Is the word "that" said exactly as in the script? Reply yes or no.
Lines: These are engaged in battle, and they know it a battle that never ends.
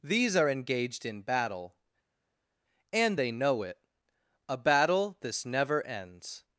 no